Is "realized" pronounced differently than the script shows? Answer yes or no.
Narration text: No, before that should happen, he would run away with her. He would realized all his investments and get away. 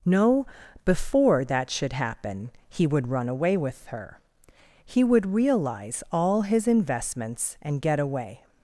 yes